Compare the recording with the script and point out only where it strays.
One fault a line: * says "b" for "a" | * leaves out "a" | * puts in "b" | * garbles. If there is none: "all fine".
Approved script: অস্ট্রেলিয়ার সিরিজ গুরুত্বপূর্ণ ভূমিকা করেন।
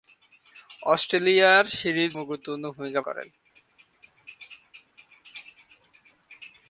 all fine